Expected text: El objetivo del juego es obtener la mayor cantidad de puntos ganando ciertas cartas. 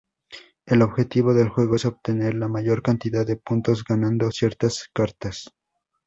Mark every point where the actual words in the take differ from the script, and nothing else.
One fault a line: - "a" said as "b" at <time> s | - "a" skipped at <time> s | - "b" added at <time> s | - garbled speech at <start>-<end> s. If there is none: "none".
none